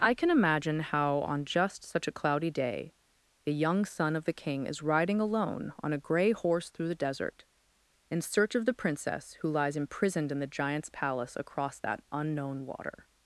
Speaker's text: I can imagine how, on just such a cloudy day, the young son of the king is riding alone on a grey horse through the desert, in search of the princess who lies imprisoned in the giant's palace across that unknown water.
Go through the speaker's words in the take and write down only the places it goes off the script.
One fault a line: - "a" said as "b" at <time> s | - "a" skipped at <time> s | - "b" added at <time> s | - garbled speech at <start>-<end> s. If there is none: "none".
none